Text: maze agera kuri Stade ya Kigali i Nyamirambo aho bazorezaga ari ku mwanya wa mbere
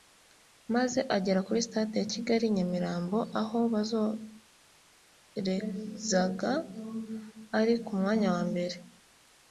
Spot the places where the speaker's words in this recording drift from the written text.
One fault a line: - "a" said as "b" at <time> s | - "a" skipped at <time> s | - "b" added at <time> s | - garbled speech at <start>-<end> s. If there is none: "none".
none